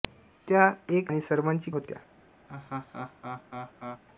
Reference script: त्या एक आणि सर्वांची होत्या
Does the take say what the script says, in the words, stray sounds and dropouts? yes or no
no